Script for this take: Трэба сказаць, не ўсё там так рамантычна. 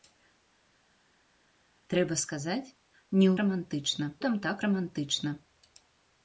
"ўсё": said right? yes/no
no